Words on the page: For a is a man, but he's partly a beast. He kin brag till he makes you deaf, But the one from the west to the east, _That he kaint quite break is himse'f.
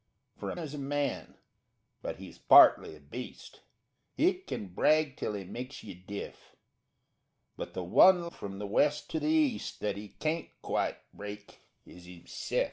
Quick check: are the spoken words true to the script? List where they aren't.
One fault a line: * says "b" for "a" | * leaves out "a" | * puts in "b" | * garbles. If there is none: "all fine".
all fine